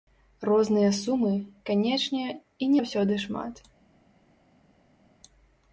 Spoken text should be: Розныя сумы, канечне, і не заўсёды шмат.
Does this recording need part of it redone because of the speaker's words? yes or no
yes